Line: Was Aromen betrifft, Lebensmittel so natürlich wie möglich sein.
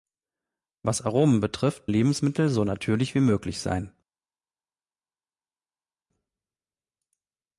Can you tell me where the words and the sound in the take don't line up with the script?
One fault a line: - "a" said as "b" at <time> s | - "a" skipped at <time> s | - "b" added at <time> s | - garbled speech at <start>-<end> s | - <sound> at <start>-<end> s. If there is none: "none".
none